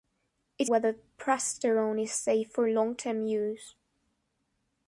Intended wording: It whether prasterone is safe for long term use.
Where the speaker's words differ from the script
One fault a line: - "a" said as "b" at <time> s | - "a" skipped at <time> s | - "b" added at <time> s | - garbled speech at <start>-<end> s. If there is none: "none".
none